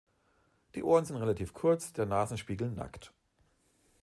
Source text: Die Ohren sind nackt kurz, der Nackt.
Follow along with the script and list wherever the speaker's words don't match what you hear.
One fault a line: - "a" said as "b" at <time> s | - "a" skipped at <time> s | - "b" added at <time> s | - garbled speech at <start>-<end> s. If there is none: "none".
- "nackt" said as "relativ" at 1.2 s
- "Nasenspiegel" added at 2.1 s